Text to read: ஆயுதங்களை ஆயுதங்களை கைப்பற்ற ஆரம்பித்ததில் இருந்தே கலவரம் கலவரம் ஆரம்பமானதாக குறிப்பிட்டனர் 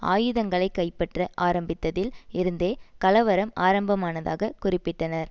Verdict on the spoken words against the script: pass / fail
fail